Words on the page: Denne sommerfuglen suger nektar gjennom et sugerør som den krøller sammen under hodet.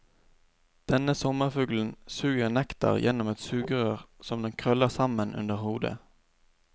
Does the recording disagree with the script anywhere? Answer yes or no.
no